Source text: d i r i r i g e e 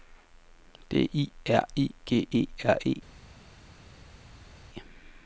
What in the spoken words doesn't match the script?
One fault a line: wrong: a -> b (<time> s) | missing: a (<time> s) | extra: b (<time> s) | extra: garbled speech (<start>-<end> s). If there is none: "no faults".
missing: r i (1.9 s)
extra: r (2.6 s)